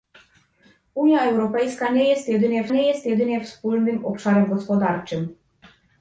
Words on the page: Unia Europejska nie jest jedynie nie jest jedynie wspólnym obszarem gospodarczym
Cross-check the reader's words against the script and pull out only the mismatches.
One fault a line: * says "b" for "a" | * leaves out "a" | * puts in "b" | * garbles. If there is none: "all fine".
all fine